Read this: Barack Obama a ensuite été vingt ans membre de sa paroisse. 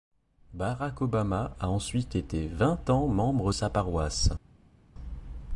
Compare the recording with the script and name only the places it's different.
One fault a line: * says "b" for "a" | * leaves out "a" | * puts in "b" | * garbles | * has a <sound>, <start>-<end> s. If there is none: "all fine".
* leaves out "de"